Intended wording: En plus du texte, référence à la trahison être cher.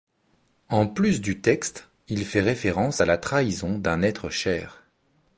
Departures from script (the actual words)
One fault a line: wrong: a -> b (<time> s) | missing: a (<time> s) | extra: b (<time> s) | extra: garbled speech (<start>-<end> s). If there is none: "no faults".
extra: il fait (2.1 s)
extra: d'un (3.8 s)